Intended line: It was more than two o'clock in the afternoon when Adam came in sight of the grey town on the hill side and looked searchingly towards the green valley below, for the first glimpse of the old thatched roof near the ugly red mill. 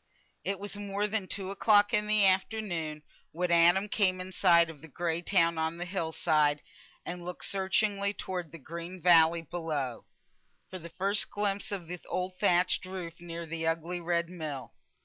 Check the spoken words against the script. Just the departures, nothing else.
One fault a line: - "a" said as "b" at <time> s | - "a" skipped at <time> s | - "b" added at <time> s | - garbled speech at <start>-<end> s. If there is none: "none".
none